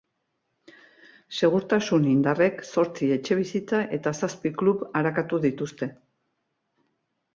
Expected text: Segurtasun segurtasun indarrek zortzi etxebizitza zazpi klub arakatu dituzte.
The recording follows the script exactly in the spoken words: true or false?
false